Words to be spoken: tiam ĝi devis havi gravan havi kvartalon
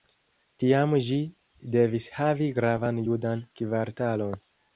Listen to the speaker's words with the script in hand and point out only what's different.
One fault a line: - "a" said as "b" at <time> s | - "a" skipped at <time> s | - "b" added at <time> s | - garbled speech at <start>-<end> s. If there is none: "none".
- "havi" said as "judan" at 3.1 s